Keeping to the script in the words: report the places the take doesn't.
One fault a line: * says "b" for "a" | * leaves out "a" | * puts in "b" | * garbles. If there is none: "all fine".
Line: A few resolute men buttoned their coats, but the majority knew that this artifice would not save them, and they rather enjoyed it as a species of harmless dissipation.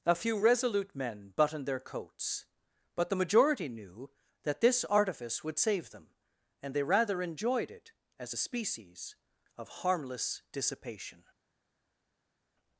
* leaves out "not"